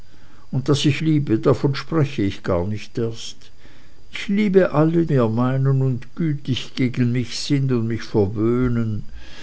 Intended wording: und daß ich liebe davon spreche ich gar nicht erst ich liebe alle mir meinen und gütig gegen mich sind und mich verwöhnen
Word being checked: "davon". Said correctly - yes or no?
yes